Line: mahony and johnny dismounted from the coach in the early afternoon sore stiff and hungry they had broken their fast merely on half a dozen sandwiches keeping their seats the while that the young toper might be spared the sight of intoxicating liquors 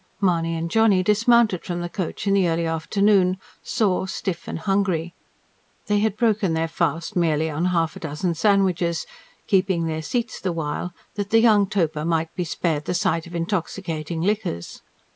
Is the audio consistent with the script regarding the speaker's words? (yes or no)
yes